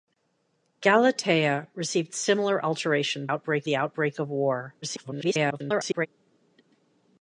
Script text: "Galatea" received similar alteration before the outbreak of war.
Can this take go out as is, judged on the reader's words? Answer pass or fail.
fail